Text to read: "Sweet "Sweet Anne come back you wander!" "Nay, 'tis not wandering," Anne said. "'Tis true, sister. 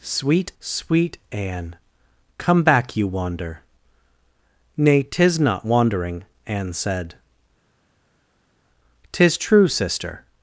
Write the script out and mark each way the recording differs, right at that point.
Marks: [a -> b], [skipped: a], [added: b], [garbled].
"Sweet "Sweet Anne come back you wander!" "Nay, 'tis not wandering," Anne said. "'Tis true, sister.